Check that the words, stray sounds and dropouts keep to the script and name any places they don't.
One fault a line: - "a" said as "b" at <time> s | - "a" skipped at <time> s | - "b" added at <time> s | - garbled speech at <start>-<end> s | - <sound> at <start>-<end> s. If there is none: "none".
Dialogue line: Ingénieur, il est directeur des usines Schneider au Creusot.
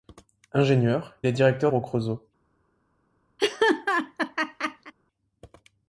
- "il" skipped at 1.1 s
- "des usines Schneider" skipped at 1.7 s
- laugh at 3.4-4.9 s